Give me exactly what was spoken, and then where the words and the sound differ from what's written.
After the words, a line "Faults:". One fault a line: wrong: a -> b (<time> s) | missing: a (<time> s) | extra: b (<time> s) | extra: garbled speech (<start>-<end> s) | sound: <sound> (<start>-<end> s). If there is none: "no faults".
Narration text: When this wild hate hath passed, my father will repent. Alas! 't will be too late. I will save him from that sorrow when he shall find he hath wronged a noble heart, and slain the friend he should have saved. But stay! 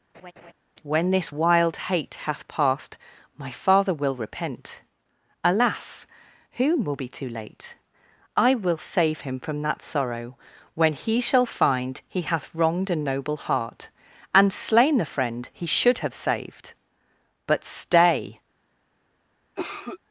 When this wild hate hath passed, my father will repent. Alas! 'whom will be too late. I will save him from that sorrow when he shall find he hath wronged a noble heart, and slain the friend he should have saved. But stay!
Faults:
sound: laugh (0.1-0.5 s)
wrong: t -> whom (6.5 s)
sound: cough (19.6-20.0 s)